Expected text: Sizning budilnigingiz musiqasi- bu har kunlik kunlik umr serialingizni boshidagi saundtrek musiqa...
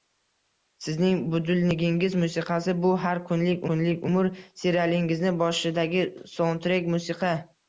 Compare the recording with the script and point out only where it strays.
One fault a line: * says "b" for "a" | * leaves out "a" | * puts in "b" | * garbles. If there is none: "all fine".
all fine